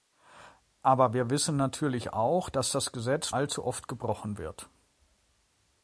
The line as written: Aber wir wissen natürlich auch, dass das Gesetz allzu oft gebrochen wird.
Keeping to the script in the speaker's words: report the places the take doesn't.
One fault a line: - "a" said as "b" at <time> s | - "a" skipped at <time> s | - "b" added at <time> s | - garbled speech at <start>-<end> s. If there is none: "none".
none